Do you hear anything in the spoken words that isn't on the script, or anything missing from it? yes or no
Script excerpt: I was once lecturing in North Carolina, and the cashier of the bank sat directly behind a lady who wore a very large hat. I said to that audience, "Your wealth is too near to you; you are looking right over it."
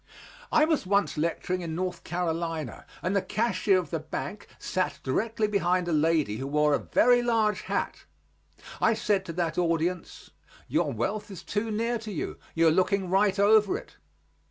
no